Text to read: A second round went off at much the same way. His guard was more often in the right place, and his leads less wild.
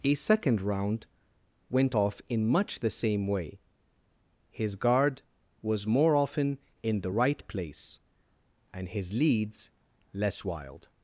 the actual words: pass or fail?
fail